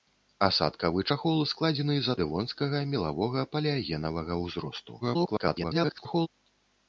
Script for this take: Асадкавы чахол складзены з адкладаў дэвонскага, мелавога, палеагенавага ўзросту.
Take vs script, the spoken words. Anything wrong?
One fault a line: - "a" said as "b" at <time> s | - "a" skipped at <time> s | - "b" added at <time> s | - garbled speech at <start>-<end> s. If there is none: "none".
- "адкладаў" skipped at 2.1 s
- garbled speech at 5.0-6.3 s